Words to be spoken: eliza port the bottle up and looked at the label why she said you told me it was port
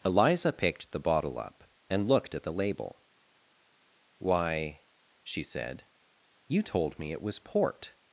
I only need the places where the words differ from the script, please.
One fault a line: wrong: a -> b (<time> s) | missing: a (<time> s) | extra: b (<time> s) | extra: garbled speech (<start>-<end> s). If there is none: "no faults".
wrong: port -> picked (0.5 s)